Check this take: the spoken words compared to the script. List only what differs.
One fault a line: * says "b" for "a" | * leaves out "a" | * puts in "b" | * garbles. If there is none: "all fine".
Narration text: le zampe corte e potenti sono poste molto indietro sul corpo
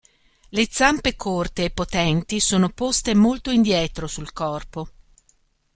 all fine